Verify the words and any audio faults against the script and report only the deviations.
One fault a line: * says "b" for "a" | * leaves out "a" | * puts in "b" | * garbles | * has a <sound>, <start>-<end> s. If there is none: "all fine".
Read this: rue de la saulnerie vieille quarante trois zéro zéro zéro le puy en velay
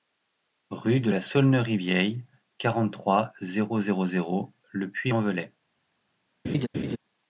* has a laugh, 6.4-7.0 s